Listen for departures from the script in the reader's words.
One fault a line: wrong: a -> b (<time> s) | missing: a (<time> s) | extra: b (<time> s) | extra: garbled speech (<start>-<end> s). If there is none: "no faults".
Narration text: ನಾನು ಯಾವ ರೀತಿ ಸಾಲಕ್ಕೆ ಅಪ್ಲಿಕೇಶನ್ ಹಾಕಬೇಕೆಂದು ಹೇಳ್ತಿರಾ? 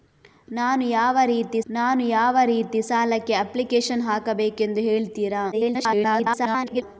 extra: ನಾನು ಯಾವ ರೀತಿ (1.7 s)
extra: garbled speech (5.5-6.8 s)